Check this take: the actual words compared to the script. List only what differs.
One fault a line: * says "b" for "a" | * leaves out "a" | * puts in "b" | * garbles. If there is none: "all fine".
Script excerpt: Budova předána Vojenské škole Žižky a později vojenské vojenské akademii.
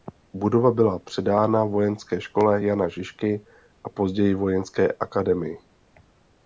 * puts in "byla"
* puts in "Jana"
* leaves out "vojenské"